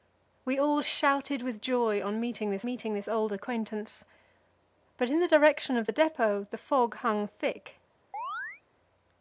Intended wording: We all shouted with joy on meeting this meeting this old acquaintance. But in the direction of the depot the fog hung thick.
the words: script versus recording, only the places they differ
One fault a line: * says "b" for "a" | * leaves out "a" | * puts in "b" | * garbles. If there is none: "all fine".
all fine